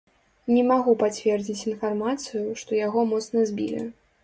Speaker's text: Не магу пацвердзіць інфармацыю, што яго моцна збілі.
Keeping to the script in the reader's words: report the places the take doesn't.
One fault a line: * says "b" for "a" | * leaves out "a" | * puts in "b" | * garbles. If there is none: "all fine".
all fine